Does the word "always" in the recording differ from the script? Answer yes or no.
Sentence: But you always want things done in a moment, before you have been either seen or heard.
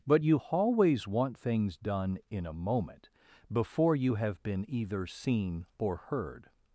no